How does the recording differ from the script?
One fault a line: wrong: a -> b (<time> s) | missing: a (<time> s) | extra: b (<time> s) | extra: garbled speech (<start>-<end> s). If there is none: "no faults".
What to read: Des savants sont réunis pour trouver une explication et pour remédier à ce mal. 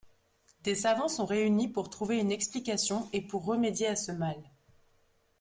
no faults